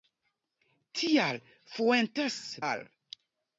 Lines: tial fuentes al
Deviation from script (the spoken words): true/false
false